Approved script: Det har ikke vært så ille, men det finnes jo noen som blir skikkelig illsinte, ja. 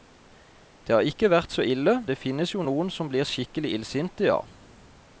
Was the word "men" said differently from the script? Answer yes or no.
yes